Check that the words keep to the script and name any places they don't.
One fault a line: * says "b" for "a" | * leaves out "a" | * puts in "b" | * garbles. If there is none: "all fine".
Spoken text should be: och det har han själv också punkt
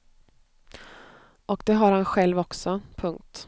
all fine